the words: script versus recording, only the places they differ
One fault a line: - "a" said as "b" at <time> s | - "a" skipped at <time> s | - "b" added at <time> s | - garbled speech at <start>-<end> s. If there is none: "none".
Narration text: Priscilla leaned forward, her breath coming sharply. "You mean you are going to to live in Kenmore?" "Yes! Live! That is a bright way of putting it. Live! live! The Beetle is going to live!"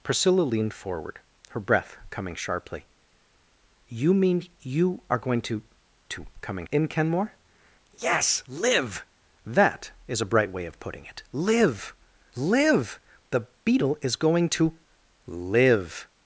- "live" said as "coming" at 6.4 s